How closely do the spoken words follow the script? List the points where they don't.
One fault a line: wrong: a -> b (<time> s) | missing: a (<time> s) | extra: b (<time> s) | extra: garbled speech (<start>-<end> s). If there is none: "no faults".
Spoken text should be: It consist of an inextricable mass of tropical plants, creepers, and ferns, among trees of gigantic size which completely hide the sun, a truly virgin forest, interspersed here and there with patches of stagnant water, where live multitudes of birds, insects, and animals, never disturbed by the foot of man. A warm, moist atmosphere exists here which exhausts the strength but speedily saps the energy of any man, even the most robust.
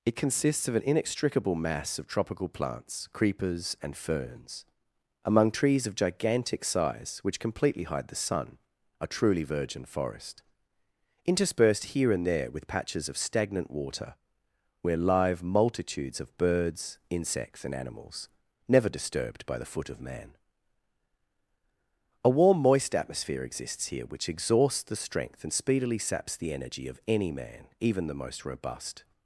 wrong: consist -> consists (0.1 s)
wrong: but -> and (25.4 s)